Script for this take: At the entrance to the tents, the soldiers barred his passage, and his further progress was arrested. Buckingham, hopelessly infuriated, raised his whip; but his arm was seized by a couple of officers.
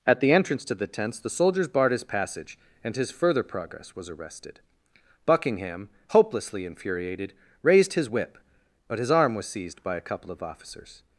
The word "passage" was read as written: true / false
true